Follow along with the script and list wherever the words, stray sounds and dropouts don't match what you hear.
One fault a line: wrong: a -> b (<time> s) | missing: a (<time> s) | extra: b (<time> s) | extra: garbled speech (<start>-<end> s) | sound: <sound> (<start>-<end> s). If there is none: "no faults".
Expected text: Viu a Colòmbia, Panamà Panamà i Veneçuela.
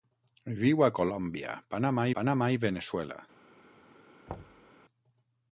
sound: thud (4.3-4.7 s)